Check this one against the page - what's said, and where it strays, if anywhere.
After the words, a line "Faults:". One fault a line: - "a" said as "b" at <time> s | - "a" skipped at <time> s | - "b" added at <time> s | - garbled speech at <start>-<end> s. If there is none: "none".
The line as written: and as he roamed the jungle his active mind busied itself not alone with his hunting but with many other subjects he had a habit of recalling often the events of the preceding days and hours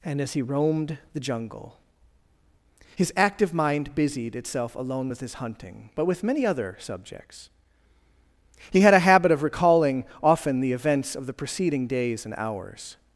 and as he roamed the jungle his active mind busied itself alone with his hunting but with many other subjects he had a habit of recalling often the events of the preceding days and hours
Faults:
- "not" skipped at 4.8 s